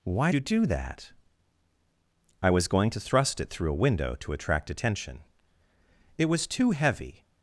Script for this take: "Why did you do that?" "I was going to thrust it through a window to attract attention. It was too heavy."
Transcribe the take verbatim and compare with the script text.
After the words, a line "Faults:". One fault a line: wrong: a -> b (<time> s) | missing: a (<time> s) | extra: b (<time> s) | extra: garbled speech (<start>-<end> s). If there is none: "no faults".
"Why you do that?" "I was going to thrust it through a window to attract attention. It was too heavy."
Faults:
missing: did (0.3 s)